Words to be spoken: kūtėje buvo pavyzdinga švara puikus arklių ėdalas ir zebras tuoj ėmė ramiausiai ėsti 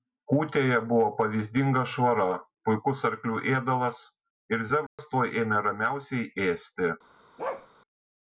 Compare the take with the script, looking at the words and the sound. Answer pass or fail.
fail